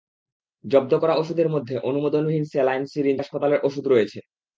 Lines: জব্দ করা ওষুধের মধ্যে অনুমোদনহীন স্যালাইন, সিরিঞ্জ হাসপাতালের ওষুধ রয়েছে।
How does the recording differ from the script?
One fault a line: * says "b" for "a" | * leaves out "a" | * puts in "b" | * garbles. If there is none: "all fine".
all fine